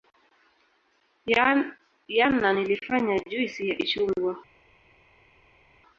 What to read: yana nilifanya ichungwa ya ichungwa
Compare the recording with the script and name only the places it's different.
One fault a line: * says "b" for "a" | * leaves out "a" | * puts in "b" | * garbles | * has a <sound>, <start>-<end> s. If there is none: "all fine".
* says "juisi" for "ichungwa"